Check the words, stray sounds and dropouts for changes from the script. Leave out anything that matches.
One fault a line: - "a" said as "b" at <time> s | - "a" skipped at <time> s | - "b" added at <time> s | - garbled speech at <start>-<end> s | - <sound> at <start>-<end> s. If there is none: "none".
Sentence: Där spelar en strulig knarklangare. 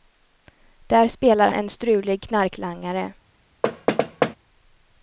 - thud at 3.6-4.4 s